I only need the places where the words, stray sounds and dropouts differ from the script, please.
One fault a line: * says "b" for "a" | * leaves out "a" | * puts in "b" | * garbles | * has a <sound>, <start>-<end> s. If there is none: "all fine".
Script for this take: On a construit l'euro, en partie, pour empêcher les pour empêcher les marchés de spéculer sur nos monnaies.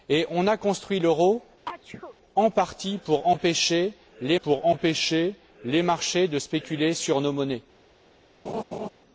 * has a sneeze, 1.7-2.2 s
* has a laugh, 8.4-8.9 s